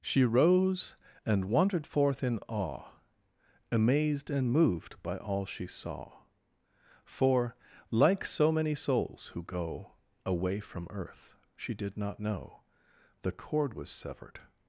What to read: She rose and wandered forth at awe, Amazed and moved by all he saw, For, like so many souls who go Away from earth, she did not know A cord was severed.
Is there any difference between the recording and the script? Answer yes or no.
yes